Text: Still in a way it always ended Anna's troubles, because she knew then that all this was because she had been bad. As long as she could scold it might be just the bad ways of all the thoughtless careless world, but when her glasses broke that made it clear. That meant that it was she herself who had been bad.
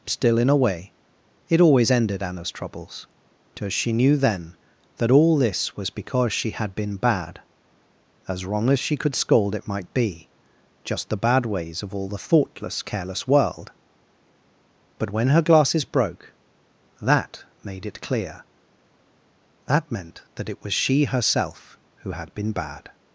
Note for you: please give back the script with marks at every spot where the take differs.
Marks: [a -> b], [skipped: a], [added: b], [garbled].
Still in a way it always ended Anna's troubles, because she knew then that all this was because she had been bad. As [long -> wrong] as she could scold it might be just the bad ways of all the thoughtless careless world, but when her glasses broke that made it clear. That meant that it was she herself who had been bad.